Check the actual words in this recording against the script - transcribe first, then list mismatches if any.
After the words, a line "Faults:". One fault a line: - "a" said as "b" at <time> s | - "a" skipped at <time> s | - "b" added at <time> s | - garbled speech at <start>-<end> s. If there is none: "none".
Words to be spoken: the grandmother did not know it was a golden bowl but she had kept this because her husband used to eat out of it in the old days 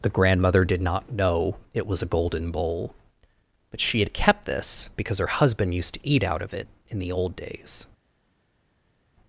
the grandmother did not know it was a golden bowl but she had kept this because her husband used to eat out of it in the old days
Faults:
none